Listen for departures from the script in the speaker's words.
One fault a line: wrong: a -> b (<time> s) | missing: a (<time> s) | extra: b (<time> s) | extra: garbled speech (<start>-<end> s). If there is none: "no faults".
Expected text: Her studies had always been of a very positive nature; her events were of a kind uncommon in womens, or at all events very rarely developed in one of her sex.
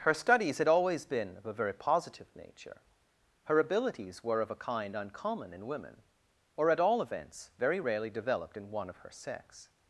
wrong: events -> abilities (3.6 s)
wrong: womens -> women (5.7 s)